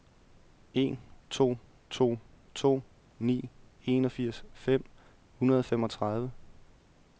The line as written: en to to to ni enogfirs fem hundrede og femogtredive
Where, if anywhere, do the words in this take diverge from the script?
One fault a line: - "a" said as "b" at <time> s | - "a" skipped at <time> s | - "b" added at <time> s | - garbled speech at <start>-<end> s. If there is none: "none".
none